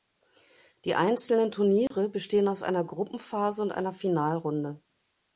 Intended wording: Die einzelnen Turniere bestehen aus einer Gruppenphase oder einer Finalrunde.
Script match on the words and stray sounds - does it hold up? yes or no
no